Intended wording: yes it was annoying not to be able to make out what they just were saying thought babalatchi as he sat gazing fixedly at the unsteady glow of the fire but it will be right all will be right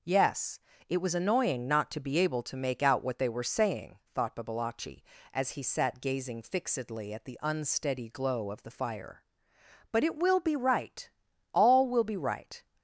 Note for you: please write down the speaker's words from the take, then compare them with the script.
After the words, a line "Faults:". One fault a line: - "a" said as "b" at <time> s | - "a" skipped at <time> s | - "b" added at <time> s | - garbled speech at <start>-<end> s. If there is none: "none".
yes it was annoying not to be able to make out what they were saying thought babalatchi as he sat gazing fixedly at the unsteady glow of the fire but it will be right all will be right
Faults:
- "just" skipped at 3.3 s